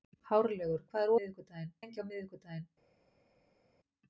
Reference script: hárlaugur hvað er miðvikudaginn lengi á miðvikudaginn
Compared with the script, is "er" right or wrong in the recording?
right